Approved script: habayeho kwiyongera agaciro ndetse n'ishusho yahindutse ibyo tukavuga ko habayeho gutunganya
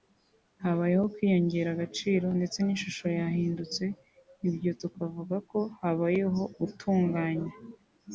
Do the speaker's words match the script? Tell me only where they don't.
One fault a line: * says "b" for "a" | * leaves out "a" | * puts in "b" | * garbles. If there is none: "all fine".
all fine